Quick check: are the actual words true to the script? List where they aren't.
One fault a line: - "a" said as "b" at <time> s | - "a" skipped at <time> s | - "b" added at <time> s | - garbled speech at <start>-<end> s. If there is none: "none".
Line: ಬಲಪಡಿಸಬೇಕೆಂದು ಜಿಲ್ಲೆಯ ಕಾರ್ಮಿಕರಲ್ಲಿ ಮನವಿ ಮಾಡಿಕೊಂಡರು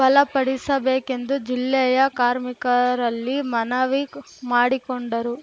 none